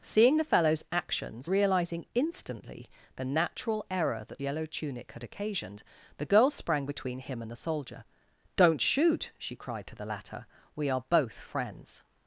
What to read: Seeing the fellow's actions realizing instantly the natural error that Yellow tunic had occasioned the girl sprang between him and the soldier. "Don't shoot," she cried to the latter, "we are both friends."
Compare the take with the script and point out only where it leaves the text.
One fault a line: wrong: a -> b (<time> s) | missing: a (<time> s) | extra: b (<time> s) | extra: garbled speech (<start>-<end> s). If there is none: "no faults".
no faults